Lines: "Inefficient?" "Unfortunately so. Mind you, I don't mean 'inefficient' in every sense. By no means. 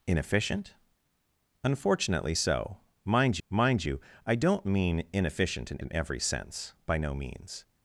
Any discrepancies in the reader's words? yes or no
yes